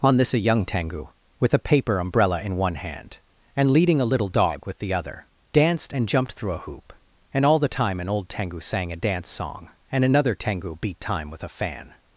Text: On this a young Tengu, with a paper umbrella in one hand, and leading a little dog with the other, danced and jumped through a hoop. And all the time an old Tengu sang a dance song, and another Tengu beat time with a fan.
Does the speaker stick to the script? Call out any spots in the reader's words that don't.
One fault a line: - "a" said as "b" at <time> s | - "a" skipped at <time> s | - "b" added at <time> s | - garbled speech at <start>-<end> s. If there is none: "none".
none